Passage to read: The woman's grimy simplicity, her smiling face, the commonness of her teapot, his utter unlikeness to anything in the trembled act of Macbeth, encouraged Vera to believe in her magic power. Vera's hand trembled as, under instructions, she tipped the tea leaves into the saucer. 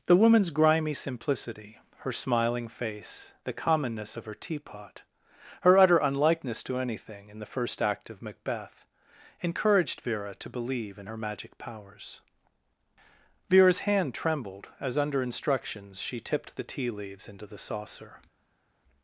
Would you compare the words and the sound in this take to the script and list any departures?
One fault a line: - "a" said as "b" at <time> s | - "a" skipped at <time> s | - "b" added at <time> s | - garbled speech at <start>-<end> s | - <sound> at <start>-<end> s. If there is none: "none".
- "his" said as "her" at 5.6 s
- "trembled" said as "first" at 7.5 s
- "power" said as "powers" at 11.6 s